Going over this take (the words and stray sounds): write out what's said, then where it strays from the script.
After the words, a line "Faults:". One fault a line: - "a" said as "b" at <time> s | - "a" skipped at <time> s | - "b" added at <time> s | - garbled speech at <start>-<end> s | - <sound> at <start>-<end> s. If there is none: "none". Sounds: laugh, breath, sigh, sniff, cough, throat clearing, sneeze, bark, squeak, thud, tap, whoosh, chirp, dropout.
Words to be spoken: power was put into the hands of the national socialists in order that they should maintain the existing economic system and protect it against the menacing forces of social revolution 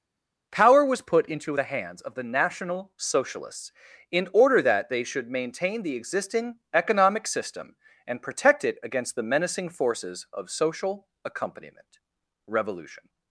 power was put into the hands of the national socialists in order that they should maintain the existing economic system and protect it against the menacing forces of social accompaniment revolution
Faults:
- "accompaniment" added at 11.2 s